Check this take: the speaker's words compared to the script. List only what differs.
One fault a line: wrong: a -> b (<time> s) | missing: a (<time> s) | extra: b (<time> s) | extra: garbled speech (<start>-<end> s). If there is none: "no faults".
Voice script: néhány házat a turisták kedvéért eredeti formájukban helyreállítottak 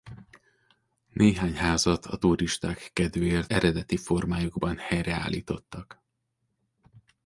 no faults